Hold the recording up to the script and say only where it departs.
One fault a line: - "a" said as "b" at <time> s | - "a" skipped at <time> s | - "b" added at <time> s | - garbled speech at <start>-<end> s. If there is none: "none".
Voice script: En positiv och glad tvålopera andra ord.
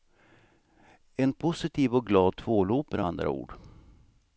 none